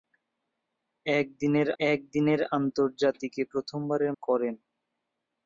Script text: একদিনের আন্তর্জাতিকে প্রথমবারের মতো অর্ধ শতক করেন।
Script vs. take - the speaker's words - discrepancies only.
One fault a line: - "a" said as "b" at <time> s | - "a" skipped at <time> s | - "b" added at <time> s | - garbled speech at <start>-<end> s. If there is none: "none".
- "একদিনের" added at 1.8 s
- "মতো অর্ধ শতক" skipped at 4.1 s